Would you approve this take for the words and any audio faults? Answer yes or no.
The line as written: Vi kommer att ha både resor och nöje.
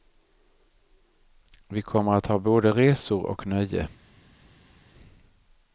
yes